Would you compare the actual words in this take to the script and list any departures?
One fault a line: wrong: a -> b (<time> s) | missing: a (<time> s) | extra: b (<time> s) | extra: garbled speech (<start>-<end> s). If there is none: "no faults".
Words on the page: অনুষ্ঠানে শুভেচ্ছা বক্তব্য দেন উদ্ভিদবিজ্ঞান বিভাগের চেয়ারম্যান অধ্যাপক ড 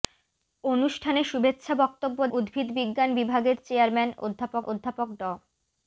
missing: দেন (2.2 s)
extra: অধ্যাপক (4.6 s)